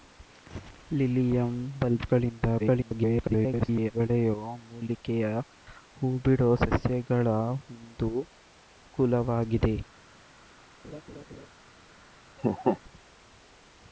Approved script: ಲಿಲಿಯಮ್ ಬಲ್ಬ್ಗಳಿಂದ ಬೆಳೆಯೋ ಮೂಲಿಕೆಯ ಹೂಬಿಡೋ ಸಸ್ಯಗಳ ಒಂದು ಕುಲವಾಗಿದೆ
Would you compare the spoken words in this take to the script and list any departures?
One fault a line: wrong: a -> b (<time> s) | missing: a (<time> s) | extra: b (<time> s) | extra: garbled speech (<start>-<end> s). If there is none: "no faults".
extra: garbled speech (2.6-3.9 s)